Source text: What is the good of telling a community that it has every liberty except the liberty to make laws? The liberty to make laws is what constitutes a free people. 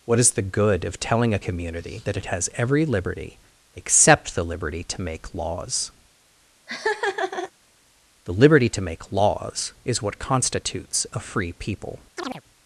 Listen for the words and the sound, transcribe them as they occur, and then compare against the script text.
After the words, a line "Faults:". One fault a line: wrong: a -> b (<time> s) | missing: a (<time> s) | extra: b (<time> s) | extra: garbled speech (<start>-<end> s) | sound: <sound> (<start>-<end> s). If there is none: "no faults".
What is the good of telling a community that it has every liberty except the liberty to make laws? The liberty to make laws is what constitutes a free people.
Faults:
sound: laugh (6.7-7.5 s)
sound: chirp (12.2-12.4 s)